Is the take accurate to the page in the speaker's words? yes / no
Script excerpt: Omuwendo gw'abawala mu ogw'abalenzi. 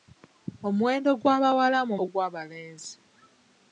yes